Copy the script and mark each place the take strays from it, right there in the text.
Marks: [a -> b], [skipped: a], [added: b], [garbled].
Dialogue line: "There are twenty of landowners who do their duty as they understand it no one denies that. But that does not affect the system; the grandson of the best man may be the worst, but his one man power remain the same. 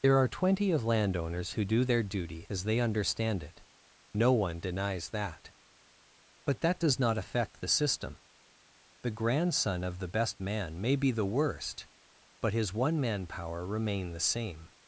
"There are twenty of landowners who do their duty as they understand it no one denies that. But that does not affect the system; the grandson of the best man may be the worst, but his one man power remain the same.